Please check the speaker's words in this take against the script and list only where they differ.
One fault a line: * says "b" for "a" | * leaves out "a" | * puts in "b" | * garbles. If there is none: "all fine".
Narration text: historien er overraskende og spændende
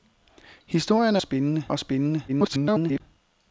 * says "spændende" for "overraskende"
* garbles